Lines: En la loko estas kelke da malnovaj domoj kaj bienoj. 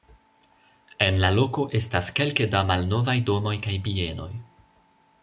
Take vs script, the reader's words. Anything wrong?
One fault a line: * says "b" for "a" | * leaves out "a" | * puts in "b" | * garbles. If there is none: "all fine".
all fine